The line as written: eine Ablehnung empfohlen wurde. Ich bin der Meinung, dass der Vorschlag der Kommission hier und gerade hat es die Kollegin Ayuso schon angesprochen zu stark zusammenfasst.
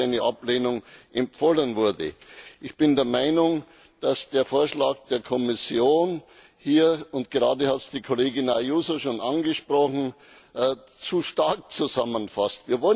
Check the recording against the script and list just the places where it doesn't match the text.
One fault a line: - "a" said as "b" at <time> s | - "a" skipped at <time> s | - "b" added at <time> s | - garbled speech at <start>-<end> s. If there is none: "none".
none